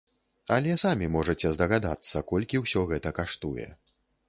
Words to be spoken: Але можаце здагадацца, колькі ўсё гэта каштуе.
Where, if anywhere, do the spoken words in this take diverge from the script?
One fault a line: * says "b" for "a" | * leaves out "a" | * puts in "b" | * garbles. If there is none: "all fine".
* puts in "самі"